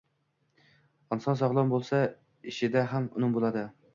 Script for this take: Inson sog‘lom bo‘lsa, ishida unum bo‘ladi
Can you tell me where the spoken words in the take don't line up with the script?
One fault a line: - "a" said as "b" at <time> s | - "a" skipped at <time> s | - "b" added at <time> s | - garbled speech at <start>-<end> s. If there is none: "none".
- "ham" added at 3.0 s